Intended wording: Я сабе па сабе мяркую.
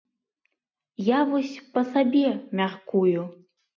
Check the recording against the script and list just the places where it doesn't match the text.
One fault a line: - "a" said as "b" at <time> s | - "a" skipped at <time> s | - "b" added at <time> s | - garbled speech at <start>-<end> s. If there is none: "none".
- "сабе" said as "вось" at 1.3 s